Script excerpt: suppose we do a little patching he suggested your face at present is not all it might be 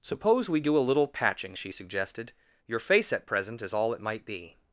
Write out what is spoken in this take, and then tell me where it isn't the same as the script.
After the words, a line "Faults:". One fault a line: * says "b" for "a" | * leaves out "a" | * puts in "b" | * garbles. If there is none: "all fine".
suppose we do a little patching she suggested your face at present is all it might be
Faults:
* says "she" for "he"
* leaves out "not"